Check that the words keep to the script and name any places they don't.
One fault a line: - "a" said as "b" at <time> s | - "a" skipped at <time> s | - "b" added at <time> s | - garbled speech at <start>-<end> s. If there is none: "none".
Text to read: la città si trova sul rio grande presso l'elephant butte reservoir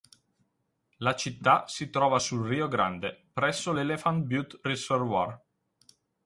none